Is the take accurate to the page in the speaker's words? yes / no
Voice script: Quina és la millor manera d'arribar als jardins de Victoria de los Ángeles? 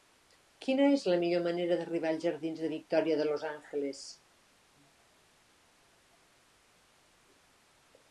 yes